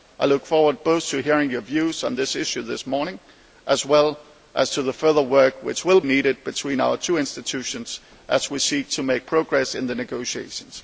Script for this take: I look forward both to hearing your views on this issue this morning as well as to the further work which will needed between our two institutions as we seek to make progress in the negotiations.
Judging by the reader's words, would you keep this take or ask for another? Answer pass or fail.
pass